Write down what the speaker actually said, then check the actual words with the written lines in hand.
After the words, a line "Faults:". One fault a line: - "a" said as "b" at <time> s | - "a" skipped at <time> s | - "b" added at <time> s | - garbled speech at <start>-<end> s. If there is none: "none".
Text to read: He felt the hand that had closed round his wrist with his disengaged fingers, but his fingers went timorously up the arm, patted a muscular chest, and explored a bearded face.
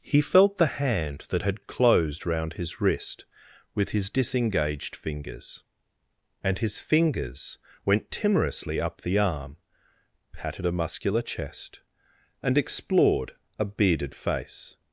He felt the hand that had closed round his wrist with his disengaged fingers, and his fingers went timorously up the arm, patted a muscular chest, and explored a bearded face.
Faults:
- "but" said as "and" at 6.4 s